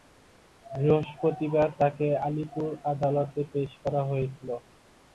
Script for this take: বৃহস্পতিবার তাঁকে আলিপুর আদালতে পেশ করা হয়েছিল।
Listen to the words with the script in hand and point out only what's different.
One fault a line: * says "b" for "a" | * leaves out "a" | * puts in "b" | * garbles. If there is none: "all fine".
all fine